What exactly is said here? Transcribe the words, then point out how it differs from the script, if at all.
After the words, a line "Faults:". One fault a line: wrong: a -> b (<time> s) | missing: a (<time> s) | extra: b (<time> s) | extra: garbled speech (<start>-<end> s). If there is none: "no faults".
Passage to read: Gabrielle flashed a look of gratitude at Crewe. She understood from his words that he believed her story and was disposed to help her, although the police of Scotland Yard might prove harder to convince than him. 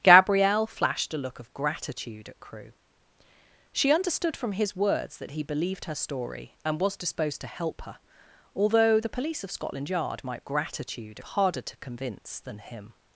Gabrielle flashed a look of gratitude at Crewe. She understood from his words that he believed her story and was disposed to help her, although the police of Scotland Yard might gratitude harder to convince than him.
Faults:
wrong: prove -> gratitude (10.4 s)